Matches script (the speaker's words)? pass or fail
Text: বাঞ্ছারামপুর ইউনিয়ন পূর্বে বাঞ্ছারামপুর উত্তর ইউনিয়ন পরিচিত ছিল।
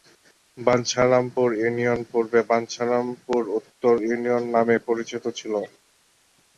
fail